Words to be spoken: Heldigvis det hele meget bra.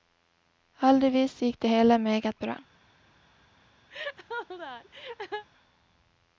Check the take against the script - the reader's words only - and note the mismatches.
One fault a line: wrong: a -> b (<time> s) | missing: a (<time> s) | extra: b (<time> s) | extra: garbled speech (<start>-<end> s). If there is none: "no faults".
extra: gikk (1.4 s)